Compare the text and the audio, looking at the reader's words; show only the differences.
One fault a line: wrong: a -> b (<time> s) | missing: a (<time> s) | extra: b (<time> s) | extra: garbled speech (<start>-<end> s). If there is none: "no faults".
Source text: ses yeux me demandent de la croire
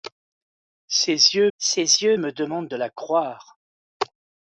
extra: ses yeux (1.6 s)